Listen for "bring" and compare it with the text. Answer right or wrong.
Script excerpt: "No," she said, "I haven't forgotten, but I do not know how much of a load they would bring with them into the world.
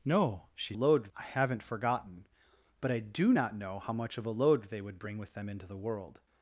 right